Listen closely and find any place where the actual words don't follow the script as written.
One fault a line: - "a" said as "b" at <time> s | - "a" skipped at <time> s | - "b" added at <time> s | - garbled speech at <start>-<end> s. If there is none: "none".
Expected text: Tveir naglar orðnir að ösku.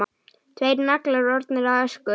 none